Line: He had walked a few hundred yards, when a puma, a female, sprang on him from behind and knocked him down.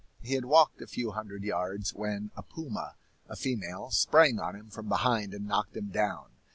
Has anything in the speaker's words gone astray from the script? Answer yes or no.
no